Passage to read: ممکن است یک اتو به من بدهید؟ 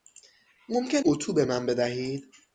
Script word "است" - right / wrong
wrong